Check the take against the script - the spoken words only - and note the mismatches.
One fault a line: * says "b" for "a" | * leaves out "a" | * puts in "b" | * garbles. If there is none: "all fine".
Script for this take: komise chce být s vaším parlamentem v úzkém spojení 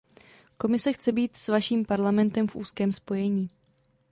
all fine